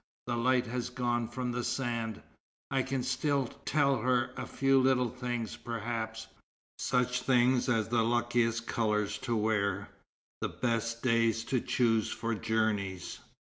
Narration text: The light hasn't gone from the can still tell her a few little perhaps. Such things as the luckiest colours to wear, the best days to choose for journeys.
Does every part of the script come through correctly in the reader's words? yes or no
no